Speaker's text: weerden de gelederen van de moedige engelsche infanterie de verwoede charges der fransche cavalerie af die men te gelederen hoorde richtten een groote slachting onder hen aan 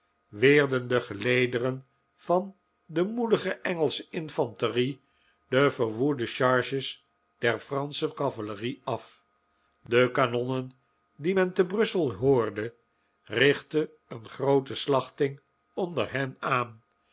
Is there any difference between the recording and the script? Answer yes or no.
yes